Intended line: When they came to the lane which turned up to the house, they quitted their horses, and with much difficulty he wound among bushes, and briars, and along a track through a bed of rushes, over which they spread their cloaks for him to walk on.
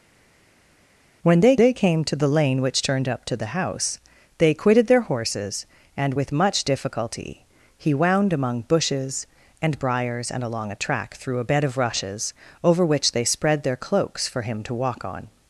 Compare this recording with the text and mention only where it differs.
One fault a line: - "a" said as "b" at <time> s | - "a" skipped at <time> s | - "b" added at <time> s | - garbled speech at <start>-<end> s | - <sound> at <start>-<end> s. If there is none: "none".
- "they" added at 1.6 s